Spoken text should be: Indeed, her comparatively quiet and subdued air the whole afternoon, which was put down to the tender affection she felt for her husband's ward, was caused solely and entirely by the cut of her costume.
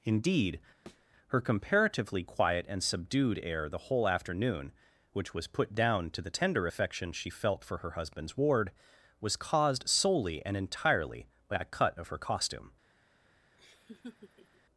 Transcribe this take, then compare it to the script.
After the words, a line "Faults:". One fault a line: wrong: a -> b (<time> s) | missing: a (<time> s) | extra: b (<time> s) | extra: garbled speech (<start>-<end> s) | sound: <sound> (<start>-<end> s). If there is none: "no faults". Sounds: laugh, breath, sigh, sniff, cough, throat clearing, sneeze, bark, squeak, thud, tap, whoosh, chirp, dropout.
Indeed, her comparatively quiet and subdued air the whole afternoon, which was put down to the tender affection she felt for her husband's ward, was caused solely and entirely by a cut of her costume.
Faults:
sound: thud (0.9-1.1 s)
wrong: the -> a (11.6 s)
sound: laugh (13.6-14.6 s)